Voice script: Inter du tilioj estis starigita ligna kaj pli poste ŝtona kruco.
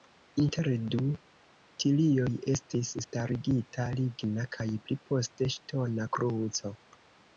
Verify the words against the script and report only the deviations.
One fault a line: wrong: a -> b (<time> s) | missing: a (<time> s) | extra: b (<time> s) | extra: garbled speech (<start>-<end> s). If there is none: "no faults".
no faults